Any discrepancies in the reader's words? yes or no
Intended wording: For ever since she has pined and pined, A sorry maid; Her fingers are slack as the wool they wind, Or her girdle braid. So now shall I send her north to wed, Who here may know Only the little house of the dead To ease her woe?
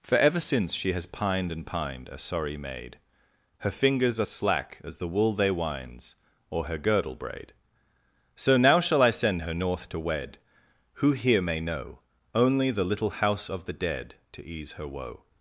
yes